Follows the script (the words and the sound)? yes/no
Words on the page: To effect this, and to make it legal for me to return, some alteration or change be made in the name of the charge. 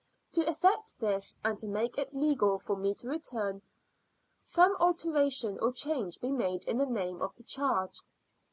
yes